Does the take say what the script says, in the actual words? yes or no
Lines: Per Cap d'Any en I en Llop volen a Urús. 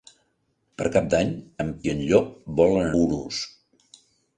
yes